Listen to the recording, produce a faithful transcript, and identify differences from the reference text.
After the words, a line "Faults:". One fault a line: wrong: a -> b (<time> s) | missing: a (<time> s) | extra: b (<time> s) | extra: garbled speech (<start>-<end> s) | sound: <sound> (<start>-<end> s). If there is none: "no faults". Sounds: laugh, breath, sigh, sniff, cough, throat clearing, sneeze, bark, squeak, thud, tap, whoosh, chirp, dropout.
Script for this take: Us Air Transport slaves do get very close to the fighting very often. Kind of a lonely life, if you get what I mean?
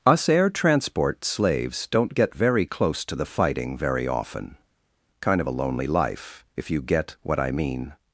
Us Air Transport slaves don't get very close to the fighting very often. Kind of a lonely life, if you get what I mean?
Faults:
wrong: do -> don't (1.9 s)